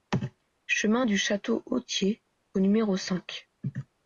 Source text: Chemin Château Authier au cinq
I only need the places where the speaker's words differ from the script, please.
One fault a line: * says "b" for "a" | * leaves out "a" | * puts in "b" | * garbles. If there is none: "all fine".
* puts in "du"
* puts in "numéro"